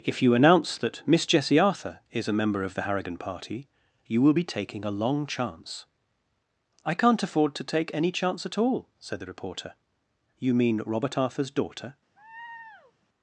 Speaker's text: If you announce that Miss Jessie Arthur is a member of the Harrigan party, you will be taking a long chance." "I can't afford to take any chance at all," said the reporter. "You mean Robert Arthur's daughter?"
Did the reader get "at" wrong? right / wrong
right